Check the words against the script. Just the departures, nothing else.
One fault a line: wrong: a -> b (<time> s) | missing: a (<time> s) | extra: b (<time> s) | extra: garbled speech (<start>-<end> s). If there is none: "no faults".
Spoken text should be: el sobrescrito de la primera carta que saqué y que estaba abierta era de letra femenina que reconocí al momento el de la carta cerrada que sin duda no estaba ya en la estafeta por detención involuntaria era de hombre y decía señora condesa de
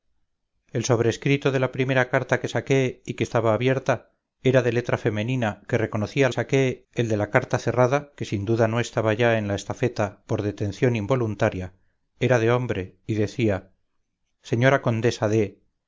wrong: momento -> saqué (6.3 s)